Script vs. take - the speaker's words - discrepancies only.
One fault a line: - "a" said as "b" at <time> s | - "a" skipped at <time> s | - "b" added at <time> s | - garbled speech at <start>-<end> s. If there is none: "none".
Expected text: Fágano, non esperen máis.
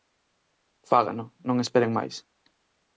none